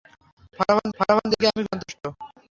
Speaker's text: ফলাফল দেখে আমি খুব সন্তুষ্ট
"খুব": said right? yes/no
no